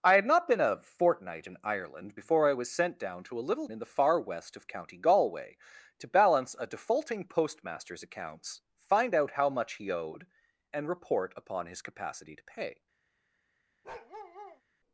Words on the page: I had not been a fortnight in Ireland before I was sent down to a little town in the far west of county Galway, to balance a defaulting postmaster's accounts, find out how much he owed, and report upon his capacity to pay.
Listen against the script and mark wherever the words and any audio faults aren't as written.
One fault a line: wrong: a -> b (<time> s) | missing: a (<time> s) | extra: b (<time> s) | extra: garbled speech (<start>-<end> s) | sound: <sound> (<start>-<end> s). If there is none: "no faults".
missing: town (3.7 s)
sound: bark (13.8-14.6 s)